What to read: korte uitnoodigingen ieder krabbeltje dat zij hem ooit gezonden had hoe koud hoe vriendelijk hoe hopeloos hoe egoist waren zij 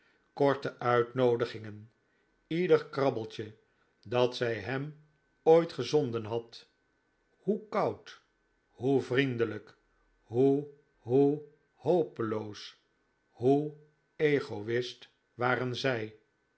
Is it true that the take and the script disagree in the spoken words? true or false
true